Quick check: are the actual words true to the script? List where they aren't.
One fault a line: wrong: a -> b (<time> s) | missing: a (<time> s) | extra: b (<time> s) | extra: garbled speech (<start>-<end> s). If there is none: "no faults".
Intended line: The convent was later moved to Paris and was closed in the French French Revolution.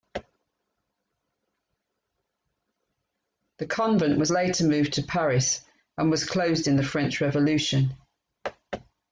missing: French (7.2 s)